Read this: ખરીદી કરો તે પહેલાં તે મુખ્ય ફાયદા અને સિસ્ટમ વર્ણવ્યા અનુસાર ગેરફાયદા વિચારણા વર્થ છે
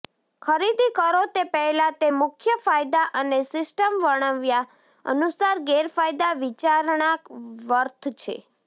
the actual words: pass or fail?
pass